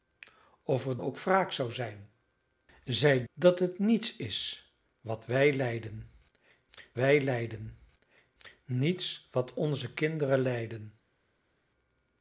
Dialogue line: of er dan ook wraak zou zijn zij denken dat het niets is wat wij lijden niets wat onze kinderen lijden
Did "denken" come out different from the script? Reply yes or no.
yes